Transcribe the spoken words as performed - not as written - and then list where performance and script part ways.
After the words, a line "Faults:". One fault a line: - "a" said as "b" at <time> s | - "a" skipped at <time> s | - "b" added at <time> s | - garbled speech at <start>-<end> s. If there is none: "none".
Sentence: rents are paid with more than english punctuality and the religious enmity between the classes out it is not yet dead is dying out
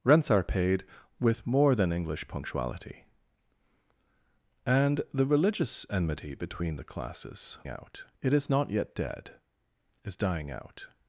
rents are paid with more than english punctuality and the religious enmity between the classes out it is not yet dead is dying out
Faults:
none